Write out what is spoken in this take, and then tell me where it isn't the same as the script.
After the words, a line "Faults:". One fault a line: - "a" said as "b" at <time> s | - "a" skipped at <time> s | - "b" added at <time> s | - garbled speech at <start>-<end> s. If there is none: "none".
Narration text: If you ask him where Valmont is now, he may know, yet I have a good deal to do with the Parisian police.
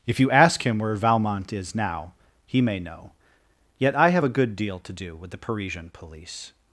If you ask him where Valmont is now, he may know, yet I have a good deal to do with the Parisian police.
Faults:
none